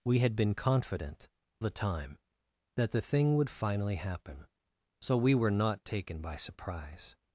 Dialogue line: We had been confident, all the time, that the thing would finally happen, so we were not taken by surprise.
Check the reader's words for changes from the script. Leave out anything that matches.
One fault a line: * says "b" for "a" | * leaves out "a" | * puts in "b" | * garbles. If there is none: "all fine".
* leaves out "all"